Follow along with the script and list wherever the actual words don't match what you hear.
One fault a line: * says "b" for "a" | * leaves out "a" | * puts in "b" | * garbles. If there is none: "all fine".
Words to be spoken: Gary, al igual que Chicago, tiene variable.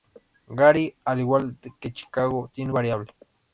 all fine